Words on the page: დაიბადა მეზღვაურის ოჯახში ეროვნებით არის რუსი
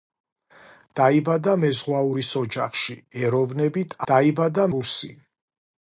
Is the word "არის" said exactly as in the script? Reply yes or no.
no